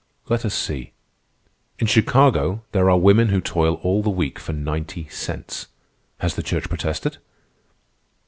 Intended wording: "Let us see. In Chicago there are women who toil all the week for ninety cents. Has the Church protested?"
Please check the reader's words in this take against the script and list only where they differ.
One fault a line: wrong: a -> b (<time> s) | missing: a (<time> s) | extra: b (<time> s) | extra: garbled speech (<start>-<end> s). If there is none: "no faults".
no faults